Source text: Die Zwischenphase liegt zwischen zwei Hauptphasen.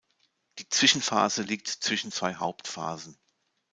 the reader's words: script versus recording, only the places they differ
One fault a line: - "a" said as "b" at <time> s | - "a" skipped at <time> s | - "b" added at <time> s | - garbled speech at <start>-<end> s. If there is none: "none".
none